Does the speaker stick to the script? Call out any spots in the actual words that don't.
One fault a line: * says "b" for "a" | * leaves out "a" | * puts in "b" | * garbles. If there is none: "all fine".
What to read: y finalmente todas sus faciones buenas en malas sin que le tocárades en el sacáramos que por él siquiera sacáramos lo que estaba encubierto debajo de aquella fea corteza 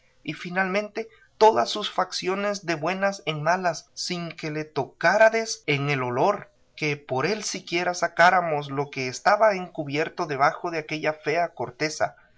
* puts in "de"
* says "olor" for "sacáramos"